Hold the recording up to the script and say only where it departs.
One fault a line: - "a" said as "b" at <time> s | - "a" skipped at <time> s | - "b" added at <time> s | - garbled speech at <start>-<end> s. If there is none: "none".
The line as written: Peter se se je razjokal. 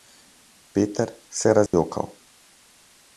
- "se" skipped at 1.5 s